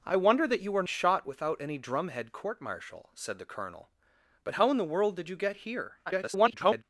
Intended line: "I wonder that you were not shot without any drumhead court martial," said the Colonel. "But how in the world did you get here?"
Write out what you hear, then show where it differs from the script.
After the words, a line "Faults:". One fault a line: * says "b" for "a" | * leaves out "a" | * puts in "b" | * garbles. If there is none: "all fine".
"I wonder that you were shot without any drumhead court martial," said the Colonel. "But how in the world did you get here?" [garbled]
Faults:
* leaves out "not"
* garbles